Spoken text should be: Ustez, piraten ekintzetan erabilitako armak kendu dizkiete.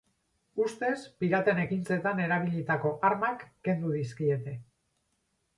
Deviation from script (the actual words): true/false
false